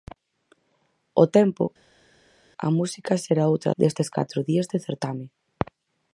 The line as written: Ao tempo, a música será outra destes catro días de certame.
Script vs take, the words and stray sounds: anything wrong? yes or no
no